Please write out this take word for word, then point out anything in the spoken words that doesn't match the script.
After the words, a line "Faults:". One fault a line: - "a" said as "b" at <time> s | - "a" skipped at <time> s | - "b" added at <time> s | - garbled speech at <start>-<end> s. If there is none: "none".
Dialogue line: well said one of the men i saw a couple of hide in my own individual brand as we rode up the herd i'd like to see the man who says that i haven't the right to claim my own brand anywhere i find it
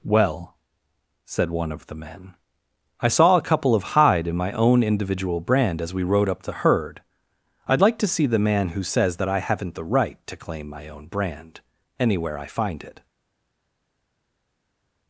well said one of the men i saw a couple of hide in my own individual brand as we rode up the herd i'd like to see the man who says that i haven't the right to claim my own brand anywhere i find it
Faults:
none